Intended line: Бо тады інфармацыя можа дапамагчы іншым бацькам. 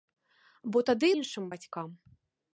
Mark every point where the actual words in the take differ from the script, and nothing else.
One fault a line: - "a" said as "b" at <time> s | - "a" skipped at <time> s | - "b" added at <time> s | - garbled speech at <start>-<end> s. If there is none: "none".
- "інфармацыя можа дапамагчы" skipped at 1.1 s